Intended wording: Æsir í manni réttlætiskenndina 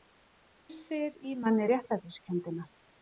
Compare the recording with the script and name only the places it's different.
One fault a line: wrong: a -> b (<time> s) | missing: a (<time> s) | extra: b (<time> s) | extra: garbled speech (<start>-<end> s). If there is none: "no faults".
no faults